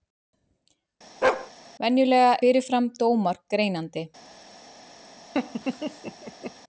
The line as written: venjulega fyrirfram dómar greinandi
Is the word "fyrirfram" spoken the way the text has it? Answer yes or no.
yes